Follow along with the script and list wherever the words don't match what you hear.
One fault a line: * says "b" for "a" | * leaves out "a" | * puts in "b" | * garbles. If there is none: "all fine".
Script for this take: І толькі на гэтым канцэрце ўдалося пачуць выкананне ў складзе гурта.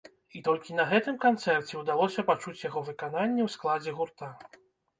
* puts in "яго"